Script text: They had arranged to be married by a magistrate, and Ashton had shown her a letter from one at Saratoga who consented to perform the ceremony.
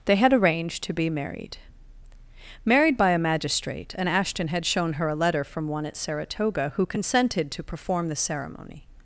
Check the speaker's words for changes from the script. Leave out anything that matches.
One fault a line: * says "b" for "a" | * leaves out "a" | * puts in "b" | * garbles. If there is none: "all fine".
* puts in "married"